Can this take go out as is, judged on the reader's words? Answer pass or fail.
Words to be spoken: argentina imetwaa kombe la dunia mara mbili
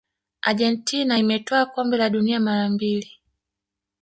pass